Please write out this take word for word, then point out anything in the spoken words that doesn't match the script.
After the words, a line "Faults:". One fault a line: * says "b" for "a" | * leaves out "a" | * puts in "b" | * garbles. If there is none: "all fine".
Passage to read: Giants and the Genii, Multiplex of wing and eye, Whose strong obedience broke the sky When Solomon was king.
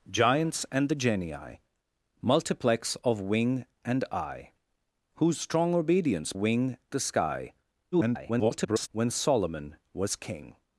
Giants and the Genii, Multiplex of wing and eye, Whose strong obedience wing the sky [garbled] When Solomon was king.
Faults:
* says "wing" for "broke"
* garbles